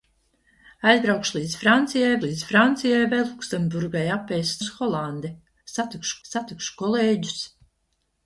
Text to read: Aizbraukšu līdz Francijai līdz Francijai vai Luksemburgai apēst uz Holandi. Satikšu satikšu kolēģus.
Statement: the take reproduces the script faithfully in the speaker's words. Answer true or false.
true